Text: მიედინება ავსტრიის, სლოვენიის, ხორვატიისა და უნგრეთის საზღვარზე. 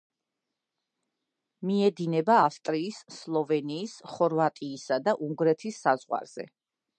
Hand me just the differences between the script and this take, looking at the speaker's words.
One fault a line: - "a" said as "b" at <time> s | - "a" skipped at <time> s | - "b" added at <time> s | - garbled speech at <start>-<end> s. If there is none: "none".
none